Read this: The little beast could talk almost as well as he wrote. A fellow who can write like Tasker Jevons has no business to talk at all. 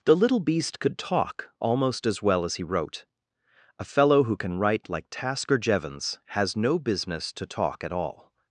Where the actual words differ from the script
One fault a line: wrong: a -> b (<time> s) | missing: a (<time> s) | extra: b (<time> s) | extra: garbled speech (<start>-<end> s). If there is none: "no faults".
no faults